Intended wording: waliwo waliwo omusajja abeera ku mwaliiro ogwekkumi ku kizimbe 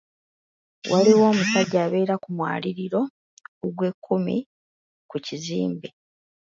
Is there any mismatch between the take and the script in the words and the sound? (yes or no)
yes